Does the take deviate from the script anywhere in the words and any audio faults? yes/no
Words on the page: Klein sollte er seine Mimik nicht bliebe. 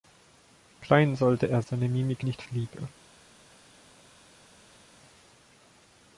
no